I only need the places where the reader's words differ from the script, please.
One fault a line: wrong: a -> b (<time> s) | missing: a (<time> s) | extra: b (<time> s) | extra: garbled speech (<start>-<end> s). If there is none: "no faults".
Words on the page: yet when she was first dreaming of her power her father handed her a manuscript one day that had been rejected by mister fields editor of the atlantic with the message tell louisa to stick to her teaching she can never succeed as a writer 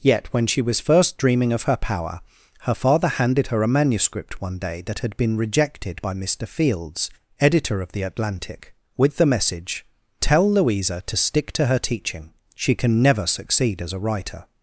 no faults